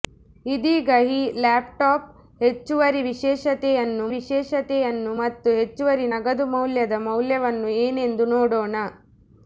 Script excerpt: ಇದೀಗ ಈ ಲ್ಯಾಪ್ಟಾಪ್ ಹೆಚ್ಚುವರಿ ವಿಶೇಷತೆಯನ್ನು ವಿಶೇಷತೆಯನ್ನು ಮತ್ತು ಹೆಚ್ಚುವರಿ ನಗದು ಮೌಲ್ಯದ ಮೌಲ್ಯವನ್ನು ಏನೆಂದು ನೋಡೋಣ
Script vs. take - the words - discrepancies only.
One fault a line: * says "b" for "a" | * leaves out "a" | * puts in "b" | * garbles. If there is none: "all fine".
all fine